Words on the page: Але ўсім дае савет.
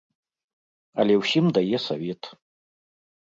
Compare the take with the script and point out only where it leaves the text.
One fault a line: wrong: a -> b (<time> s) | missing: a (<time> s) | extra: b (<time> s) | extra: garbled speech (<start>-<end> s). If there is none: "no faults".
no faults